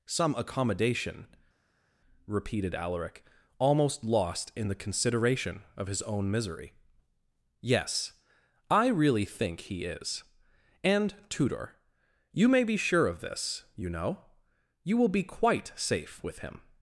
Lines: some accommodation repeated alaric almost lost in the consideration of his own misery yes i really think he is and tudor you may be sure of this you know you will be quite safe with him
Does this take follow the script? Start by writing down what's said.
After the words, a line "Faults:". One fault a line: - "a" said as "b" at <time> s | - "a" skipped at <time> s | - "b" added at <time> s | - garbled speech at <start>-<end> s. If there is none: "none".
some accommodation repeated alaric almost lost in the consideration of his own misery yes i really think he is and tudor you may be sure of this you know you will be quite safe with him
Faults:
none